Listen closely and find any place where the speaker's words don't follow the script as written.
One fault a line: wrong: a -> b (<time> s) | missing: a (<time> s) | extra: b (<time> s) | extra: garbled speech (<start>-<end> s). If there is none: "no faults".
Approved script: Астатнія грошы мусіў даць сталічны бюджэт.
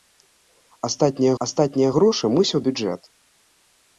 extra: астатнія (1.4 s)
missing: даць сталічны (2.6 s)